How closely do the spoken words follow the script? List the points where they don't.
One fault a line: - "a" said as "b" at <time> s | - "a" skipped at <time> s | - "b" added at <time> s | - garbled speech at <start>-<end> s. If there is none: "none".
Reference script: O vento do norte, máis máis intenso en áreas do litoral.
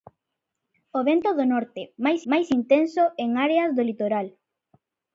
none